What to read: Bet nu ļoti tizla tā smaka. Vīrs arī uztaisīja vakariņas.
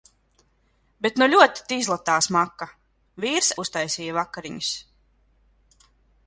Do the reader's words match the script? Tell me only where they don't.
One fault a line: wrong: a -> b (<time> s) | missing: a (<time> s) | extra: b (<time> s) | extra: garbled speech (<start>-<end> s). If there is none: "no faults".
missing: arī (3.5 s)